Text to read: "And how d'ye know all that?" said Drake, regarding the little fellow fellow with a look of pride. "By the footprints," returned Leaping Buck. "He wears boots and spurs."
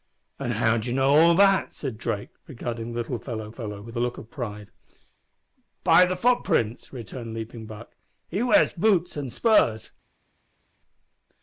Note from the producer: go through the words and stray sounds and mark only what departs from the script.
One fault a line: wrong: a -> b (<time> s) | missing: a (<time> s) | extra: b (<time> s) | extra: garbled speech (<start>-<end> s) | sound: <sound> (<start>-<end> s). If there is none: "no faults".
no faults